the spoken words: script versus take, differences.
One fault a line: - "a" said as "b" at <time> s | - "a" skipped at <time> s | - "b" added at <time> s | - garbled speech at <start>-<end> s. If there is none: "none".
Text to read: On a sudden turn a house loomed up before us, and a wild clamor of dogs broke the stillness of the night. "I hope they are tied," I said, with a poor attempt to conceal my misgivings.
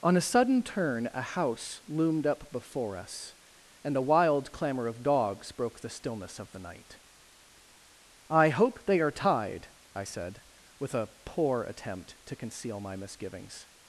none